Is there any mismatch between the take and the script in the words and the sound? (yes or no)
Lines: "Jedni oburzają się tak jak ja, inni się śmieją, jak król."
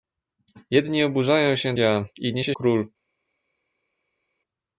yes